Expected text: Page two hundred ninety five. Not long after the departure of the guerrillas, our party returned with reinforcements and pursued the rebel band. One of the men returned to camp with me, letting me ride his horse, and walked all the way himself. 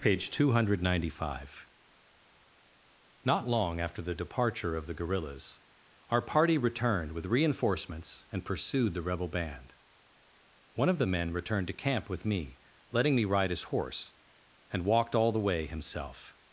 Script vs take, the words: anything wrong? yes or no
no